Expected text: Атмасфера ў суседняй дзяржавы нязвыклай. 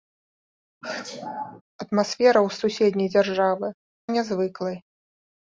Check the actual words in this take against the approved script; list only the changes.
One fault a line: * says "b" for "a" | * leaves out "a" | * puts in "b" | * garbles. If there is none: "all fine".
all fine